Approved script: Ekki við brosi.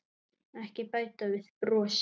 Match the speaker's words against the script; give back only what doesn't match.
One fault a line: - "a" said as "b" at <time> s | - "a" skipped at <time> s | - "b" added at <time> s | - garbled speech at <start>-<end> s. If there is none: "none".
- "bæta" added at 0.9 s